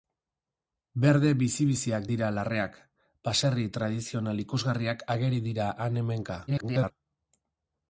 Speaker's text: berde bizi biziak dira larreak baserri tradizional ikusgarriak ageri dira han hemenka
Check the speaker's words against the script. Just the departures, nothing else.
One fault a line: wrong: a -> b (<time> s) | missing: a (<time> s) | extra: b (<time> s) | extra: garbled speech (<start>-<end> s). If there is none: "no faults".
extra: garbled speech (6.5-6.9 s)